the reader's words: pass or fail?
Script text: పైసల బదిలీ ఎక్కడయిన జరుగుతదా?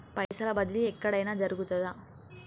pass